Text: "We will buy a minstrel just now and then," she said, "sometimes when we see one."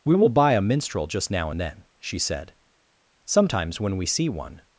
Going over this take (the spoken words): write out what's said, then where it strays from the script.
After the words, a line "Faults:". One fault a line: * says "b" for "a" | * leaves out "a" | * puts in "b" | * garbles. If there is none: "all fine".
"We will buy a minstrel just now and then," she said, "sometimes when we see one."
Faults:
all fine